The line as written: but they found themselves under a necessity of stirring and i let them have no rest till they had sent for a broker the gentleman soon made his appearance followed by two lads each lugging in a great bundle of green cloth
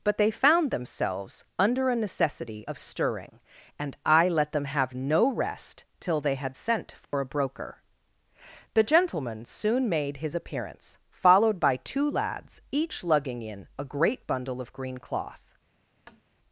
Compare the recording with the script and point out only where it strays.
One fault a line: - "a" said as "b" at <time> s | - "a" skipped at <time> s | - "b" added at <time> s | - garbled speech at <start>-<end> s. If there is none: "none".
none